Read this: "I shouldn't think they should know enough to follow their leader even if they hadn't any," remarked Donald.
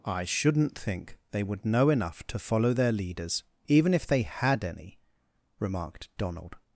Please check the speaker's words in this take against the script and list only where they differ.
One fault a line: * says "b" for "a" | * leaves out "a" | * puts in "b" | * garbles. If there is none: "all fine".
* says "would" for "should"
* says "leaders" for "leader"
* says "had" for "hadn't"